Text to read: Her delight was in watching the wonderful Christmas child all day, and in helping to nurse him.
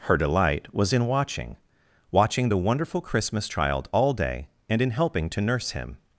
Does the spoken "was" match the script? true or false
true